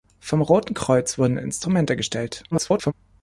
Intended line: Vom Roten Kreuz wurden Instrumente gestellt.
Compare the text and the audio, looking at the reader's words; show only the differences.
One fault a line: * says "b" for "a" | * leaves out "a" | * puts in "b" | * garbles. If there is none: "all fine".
* garbles